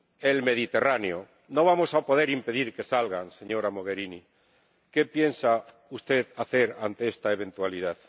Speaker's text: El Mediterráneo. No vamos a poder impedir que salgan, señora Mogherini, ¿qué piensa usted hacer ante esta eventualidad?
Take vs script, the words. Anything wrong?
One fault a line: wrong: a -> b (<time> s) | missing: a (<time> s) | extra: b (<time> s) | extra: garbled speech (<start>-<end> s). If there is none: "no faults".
no faults